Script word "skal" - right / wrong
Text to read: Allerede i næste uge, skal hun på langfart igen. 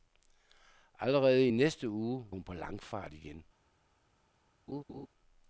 wrong